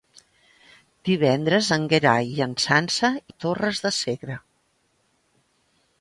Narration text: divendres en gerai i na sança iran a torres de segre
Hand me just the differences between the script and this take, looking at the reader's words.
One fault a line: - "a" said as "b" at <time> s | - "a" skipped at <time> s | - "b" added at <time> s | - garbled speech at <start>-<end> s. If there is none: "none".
- "iran" skipped at 3.1 s